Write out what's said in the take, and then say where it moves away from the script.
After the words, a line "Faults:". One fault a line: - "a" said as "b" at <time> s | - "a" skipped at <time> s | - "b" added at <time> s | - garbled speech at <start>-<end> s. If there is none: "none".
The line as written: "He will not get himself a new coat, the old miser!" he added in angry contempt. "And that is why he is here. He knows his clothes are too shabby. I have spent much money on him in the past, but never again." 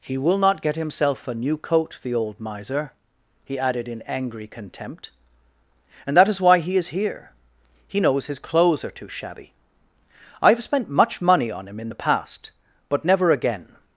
"He will not get himself a new coat, the old miser!" he added in angry contempt. "And that is why he is here. He knows his clothes are too shabby. I have spent much money on him in the past, but never again."
Faults:
none